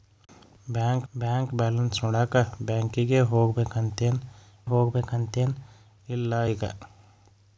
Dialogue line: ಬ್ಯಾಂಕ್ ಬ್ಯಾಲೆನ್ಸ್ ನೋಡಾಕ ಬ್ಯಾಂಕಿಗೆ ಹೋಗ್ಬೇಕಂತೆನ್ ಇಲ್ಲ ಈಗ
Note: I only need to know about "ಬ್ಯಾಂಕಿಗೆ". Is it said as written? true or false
true